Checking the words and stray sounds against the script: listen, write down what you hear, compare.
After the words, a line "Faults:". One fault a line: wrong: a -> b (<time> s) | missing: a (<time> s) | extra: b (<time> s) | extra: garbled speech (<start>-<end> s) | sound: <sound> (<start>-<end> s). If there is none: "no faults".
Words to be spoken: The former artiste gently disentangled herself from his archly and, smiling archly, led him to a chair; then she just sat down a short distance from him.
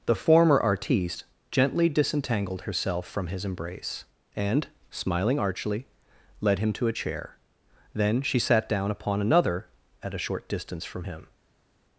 The former artiste gently disentangled herself from his embrace and, smiling archly, led him to a chair; then she sat down upon another at a short distance from him.
Faults:
wrong: archly -> embrace (3.5 s)
missing: just (8.4 s)
extra: upon another at (8.9 s)